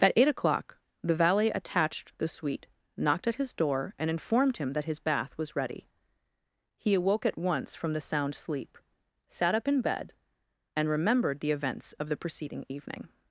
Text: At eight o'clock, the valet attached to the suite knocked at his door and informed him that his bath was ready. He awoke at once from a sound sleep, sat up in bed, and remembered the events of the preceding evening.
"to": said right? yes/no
no